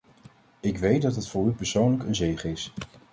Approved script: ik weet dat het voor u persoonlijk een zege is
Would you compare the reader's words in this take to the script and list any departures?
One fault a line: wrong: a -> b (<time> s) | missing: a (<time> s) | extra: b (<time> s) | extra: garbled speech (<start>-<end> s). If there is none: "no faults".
no faults